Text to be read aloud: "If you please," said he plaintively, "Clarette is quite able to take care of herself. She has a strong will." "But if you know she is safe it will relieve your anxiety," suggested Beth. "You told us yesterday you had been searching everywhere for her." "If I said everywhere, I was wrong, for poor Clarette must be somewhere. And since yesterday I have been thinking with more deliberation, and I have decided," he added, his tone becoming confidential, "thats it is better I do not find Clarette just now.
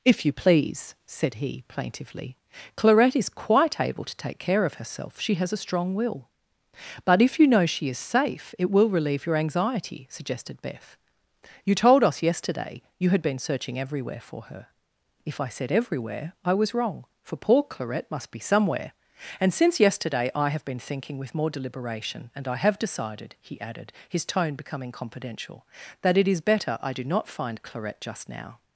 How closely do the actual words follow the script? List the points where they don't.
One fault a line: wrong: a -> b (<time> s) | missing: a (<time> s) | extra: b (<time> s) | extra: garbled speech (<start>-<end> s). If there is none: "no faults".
wrong: thats -> that (26.0 s)